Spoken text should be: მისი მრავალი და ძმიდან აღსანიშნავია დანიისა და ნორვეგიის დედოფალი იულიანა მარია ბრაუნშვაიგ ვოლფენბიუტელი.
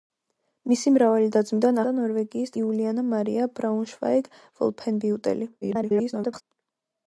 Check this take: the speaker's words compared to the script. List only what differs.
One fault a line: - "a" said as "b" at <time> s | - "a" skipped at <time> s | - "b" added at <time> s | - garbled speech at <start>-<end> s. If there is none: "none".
- "აღსანიშნავია დანიისა" skipped at 1.8 s
- "დედოფალი" skipped at 2.6 s
- garbled speech at 5.6-6.4 s